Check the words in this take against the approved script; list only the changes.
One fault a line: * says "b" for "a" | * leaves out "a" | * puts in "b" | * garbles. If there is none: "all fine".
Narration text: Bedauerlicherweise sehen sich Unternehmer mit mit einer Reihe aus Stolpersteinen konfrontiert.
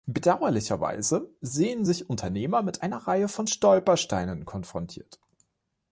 * leaves out "mit"
* says "von" for "aus"